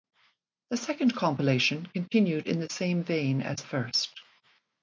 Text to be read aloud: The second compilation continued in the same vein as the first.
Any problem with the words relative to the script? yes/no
yes